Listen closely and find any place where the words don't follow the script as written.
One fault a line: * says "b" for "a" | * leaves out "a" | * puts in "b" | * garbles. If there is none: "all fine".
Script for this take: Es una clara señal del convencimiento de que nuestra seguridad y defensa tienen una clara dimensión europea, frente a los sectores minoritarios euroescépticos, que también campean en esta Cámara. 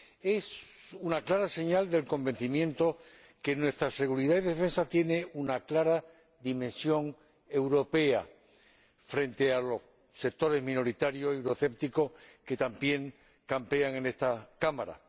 all fine